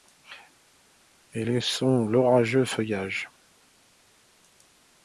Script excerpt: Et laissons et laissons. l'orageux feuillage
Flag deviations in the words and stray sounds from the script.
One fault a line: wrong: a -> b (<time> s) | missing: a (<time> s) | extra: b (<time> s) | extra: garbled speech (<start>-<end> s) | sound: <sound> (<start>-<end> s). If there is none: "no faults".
missing: et laissons (2.1 s)